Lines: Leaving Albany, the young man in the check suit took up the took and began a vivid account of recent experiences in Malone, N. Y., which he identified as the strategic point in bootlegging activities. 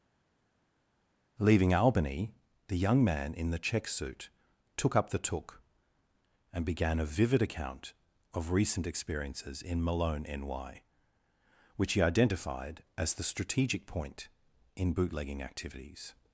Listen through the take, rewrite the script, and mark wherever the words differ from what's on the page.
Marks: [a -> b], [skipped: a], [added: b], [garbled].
Leaving Albany, the young man in the check suit took up the took and began a vivid account of recent experiences in Malone, N. Y., which he identified as the strategic point in bootlegging activities.